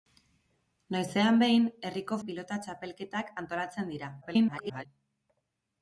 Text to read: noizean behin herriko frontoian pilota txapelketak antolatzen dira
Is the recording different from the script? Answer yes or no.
yes